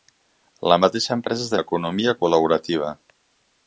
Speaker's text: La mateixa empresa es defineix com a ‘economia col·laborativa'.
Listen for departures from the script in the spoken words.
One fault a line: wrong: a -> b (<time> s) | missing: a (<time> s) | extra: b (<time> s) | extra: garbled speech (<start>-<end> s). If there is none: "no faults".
missing: defineix com (1.5 s)